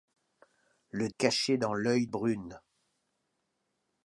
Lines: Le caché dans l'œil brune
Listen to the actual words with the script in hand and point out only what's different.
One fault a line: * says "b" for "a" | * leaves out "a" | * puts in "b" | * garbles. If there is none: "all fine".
all fine